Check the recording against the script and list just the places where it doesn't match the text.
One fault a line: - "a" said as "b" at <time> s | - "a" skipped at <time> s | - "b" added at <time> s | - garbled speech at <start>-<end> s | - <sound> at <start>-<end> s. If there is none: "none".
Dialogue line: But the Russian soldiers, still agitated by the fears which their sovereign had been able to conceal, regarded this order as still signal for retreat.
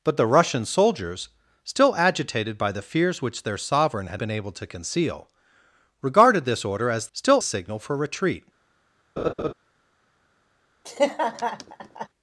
- laugh at 9.2-9.5 s
- laugh at 10.8-12.1 s